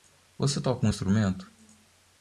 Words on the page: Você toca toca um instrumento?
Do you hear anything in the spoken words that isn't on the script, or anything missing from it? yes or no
yes